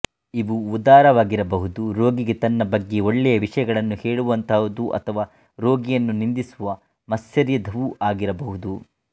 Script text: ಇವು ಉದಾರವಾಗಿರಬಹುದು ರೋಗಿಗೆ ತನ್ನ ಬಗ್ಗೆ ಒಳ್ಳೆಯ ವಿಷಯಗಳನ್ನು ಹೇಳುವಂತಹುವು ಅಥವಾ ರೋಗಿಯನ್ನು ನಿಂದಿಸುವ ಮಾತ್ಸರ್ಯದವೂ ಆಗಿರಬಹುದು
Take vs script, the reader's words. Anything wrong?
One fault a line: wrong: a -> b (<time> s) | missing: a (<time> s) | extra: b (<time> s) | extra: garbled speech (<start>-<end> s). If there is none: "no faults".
no faults